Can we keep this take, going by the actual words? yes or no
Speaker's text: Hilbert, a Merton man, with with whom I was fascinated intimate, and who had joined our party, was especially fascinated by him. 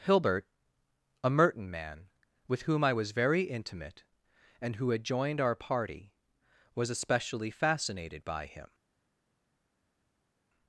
no